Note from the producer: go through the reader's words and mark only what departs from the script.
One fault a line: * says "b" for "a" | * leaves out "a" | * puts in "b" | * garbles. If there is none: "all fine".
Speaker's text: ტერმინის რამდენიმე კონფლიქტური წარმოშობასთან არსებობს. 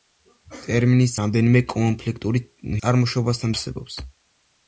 all fine